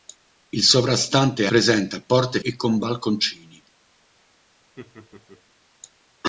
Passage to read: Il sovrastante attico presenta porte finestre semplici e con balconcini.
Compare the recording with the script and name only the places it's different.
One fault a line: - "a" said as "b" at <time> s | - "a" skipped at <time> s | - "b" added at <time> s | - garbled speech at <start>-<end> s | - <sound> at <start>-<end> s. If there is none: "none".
- "attico" skipped at 1.5 s
- "finestre semplici" skipped at 2.4 s
- laugh at 4.8-5.4 s